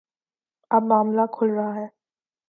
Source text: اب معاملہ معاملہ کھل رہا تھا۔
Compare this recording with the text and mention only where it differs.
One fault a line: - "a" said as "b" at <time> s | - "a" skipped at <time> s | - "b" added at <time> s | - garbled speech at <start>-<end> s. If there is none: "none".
- "معاملہ" skipped at 1.2 s
- "تھا" said as "ہے" at 1.8 s